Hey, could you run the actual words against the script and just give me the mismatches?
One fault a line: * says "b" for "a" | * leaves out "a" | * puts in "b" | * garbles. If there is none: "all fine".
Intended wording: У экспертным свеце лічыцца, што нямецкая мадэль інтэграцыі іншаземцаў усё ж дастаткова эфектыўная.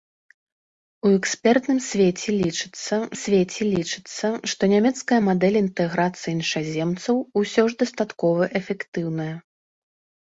* puts in "свеце лічыцца"